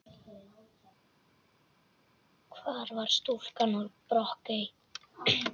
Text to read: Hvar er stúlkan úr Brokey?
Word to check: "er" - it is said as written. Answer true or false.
false